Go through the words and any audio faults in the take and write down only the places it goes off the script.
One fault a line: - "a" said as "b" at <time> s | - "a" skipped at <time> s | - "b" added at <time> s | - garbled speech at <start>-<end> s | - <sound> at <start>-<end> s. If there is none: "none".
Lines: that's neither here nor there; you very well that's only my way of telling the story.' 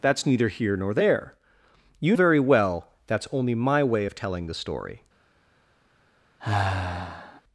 - sigh at 6.4-7.4 s